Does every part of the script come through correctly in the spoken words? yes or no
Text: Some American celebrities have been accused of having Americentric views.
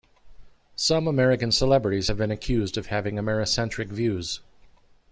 yes